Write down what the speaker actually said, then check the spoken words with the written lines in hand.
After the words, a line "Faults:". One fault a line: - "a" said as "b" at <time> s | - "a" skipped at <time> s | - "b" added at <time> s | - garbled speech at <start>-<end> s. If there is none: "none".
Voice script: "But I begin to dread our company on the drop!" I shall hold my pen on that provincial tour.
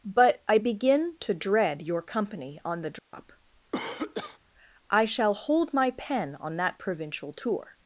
"But I begin to dread your company on the drop!" I shall hold my pen on that provincial tour.
Faults:
- "our" said as "your" at 1.8 s